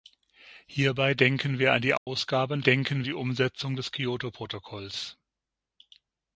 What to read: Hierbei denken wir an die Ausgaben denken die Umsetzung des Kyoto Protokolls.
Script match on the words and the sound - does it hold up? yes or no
no